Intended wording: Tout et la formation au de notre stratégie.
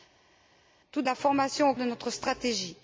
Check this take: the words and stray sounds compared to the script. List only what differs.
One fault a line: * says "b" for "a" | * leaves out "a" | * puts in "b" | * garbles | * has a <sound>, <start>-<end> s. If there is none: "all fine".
all fine